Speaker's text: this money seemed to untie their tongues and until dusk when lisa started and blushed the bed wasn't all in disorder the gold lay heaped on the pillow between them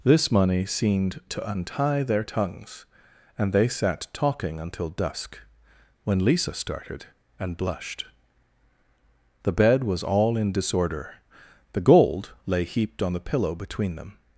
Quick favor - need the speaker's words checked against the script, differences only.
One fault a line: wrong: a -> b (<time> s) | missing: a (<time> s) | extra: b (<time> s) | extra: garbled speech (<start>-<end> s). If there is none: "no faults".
extra: they sat talking (3.5 s)
wrong: wasn't -> was (9.8 s)